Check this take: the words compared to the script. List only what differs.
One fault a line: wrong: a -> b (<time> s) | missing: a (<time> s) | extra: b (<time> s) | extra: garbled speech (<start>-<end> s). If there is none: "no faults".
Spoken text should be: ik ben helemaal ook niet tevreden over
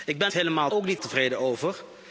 no faults